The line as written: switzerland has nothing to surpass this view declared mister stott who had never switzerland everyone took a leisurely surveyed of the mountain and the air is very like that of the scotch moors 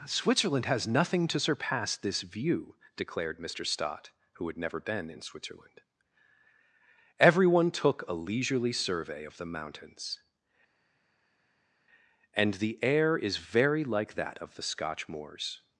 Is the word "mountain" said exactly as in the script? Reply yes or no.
no